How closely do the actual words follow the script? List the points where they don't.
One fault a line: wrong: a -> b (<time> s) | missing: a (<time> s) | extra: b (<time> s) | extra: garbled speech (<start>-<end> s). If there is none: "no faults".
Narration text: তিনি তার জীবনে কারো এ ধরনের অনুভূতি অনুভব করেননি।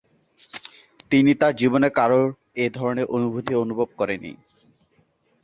no faults